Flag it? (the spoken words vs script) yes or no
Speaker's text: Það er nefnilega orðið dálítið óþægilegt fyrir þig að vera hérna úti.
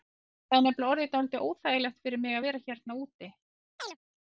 yes